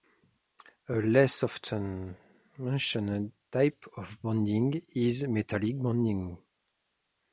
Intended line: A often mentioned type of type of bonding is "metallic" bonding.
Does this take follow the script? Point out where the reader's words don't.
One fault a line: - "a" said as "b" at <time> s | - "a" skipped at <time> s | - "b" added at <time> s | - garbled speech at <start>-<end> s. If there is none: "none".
- "less" added at 0.9 s
- "type of" skipped at 4.2 s